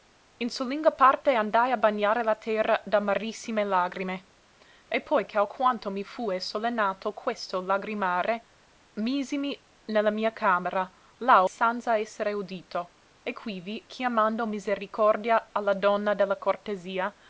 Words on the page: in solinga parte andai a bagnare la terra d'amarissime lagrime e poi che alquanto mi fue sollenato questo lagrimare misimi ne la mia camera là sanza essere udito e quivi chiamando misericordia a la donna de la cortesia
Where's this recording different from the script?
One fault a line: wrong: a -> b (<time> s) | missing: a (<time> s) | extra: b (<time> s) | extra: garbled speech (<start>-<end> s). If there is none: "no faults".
no faults